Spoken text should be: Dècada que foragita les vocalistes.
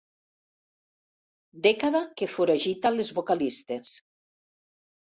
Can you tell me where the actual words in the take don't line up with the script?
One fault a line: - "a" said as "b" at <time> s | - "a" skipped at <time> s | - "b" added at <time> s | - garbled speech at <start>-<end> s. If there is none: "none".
none